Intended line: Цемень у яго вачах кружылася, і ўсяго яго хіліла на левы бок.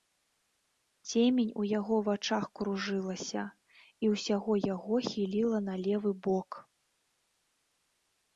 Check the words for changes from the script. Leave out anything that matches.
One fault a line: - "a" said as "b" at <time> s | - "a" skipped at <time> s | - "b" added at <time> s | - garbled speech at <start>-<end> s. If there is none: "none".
none